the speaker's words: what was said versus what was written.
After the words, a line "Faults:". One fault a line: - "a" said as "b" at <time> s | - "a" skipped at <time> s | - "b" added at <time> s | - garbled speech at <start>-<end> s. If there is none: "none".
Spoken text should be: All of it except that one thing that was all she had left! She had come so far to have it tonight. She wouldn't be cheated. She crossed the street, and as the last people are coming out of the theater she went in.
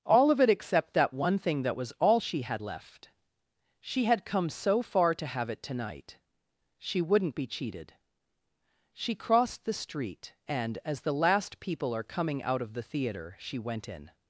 All of it except that one thing that was all she had left! She had come so far to have it tonight. She wouldn't be cheated. She crossed the street, and as the last people are coming out of the theater she went in.
Faults:
none